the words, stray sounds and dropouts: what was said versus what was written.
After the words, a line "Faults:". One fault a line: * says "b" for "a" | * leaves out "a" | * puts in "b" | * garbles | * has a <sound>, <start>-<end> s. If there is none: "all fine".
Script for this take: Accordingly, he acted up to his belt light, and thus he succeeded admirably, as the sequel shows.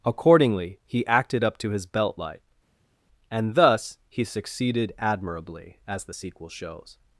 Accordingly, he acted up to his belt light, and thus he succeeded admirably, as the sequel shows.
Faults:
all fine